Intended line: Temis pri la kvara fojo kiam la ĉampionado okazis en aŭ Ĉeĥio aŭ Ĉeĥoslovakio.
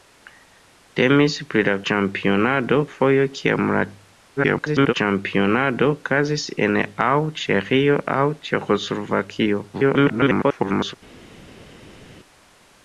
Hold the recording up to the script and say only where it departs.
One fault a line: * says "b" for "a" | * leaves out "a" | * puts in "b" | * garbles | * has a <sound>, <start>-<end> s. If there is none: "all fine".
* says "ĉampionado" for "kvara"
* garbles
* garbles